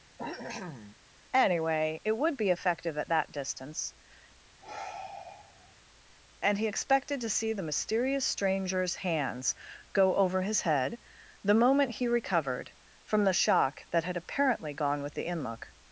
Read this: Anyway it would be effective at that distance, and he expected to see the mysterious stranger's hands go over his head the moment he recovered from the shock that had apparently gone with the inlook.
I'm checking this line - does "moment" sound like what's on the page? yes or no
yes